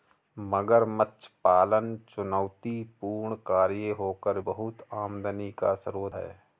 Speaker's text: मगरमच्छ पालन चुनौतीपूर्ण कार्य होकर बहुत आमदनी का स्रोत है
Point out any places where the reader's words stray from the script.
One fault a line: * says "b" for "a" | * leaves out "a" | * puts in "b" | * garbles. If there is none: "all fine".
all fine